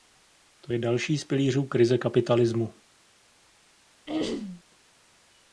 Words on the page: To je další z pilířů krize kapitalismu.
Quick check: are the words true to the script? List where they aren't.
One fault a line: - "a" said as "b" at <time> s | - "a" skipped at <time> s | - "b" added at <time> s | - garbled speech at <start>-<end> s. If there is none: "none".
none